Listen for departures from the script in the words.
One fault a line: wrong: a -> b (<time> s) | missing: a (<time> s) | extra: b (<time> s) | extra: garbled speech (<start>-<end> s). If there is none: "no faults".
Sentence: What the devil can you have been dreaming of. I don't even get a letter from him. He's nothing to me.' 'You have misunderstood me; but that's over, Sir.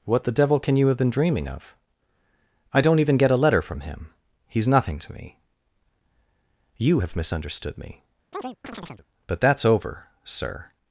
no faults